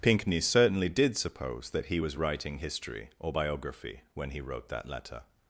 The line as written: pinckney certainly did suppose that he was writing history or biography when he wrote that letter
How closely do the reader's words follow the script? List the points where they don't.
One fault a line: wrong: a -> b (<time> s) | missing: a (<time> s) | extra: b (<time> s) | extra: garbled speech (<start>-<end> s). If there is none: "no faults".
no faults